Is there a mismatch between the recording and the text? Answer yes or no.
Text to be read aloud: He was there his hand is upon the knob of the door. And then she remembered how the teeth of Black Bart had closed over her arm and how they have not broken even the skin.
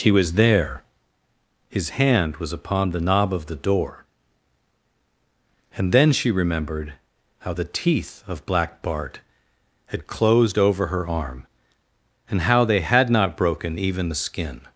yes